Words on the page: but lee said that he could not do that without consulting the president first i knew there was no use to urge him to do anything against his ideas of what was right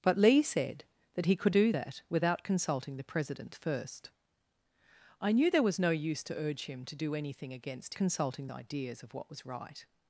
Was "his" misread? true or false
true